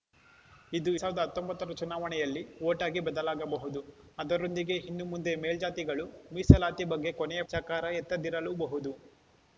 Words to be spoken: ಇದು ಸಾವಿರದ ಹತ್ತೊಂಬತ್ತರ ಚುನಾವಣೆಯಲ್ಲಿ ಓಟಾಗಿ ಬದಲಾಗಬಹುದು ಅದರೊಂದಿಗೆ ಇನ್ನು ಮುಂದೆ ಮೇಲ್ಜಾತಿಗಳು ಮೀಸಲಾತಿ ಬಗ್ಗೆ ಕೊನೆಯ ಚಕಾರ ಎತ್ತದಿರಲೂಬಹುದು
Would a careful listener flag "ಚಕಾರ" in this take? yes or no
no